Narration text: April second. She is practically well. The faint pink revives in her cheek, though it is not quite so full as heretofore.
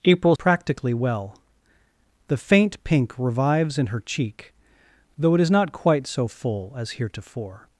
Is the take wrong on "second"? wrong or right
wrong